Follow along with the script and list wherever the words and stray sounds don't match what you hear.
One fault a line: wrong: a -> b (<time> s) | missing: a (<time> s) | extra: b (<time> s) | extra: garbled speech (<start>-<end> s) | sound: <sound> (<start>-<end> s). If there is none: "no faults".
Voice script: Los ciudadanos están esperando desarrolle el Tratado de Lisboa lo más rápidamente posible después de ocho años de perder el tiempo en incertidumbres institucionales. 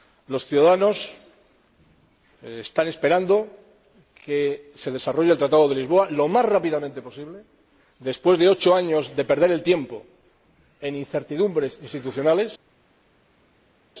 extra: que se (4.2 s)